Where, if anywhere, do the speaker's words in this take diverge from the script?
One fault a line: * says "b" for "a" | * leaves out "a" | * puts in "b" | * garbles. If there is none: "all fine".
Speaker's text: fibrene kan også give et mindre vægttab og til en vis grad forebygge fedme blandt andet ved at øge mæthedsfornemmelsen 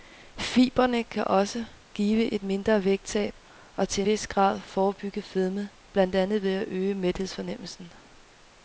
* leaves out "en"